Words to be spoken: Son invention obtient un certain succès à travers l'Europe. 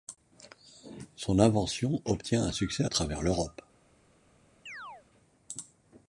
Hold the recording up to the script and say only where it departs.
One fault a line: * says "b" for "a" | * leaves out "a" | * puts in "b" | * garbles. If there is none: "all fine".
* leaves out "certain"